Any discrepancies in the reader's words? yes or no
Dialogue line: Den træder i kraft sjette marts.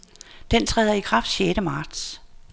no